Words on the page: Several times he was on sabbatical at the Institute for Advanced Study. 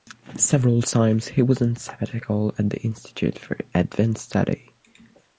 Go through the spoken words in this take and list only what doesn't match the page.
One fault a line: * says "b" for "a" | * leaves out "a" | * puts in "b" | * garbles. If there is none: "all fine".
all fine